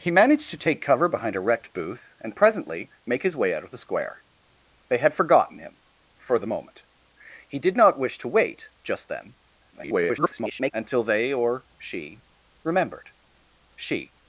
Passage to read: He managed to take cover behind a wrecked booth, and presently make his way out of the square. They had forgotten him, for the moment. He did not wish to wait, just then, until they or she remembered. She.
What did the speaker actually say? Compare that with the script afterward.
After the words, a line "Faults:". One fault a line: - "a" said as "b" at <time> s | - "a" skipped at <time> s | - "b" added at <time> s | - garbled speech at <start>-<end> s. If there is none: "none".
He managed to take cover behind a wrecked booth, and presently make his way out of the square. They had forgotten him, for the moment. He did not wish to wait, just then, [garbled] until they or she remembered. She.
Faults:
- garbled speech at 9.7-10.7 s